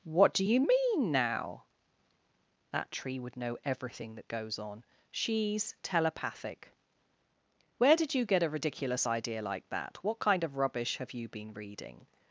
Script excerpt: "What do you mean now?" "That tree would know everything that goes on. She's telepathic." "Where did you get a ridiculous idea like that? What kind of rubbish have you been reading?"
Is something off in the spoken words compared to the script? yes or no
no